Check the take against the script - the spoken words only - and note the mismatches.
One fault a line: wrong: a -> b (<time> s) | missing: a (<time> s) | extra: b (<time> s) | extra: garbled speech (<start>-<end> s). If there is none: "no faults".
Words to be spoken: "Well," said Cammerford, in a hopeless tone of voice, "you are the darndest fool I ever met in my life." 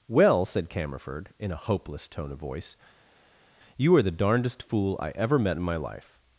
no faults